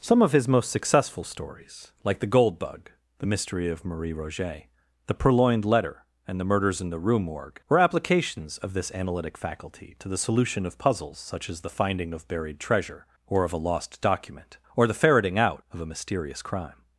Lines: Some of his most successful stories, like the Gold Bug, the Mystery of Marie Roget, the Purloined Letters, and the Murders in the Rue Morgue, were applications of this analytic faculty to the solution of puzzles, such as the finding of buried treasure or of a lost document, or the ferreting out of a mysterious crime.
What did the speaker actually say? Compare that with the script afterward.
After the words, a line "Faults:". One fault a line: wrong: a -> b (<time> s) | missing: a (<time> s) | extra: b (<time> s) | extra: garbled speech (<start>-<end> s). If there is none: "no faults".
Some of his most successful stories, like the Gold Bug, the Mystery of Marie Roget, the Purloined Letter, and the Murders in the Rue Morgue, were applications of this analytic faculty to the solution of puzzles, such as the finding of buried treasure or of a lost document, or the ferreting out of a mysterious crime.
Faults:
wrong: Letters -> Letter (5.6 s)